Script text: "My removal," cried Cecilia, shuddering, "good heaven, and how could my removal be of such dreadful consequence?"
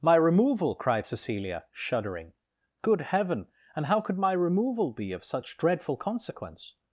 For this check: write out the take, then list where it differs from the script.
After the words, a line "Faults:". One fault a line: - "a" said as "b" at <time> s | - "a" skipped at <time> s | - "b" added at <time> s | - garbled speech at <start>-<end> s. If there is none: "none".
"My removal," cried Cecilia, shuddering, "good heaven, and how could my removal be of such dreadful consequence?"
Faults:
none